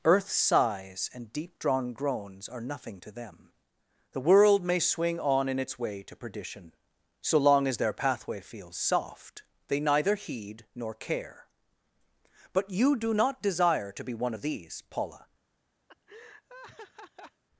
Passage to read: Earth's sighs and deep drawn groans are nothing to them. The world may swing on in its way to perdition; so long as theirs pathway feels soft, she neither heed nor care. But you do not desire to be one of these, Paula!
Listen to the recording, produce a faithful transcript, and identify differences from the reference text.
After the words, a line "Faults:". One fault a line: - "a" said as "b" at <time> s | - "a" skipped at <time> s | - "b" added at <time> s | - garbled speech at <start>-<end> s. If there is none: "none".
Earth's sighs and deep drawn groans are nothing to them. The world may swing on in its way to perdition; so long as their pathway feels soft, they neither heed nor care. But you do not desire to be one of these, Paula!
Faults:
- "theirs" said as "their" at 7.8 s
- "she" said as "they" at 9.7 s